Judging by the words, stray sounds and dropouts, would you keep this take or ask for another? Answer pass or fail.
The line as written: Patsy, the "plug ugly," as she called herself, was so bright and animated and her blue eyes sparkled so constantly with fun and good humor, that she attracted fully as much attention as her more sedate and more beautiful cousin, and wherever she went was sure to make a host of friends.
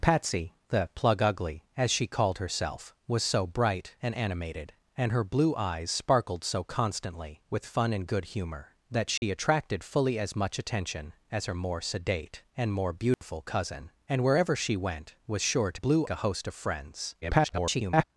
fail